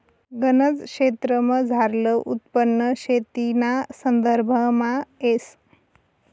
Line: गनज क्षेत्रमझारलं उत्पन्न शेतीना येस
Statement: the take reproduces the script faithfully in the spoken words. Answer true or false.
false